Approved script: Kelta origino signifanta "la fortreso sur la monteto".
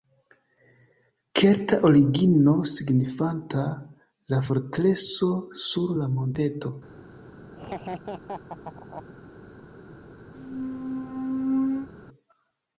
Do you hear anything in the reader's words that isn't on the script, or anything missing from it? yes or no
no